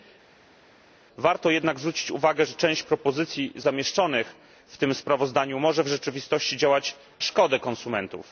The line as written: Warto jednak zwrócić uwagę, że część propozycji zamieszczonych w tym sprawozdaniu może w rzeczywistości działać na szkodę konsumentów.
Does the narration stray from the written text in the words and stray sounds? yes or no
yes